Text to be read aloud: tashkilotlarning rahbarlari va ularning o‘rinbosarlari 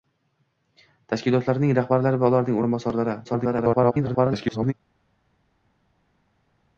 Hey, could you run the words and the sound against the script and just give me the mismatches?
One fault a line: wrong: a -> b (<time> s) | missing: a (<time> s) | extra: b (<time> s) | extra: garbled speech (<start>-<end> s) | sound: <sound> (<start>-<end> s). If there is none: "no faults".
extra: garbled speech (3.2-4.7 s)